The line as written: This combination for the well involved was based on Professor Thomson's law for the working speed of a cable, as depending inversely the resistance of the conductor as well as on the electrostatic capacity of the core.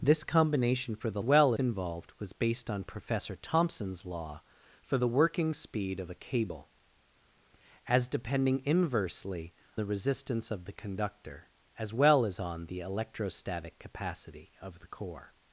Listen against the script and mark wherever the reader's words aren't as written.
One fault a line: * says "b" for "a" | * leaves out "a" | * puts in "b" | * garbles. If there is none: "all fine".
all fine